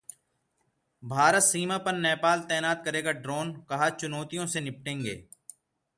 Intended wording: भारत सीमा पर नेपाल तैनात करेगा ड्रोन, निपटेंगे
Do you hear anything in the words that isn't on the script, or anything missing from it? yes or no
yes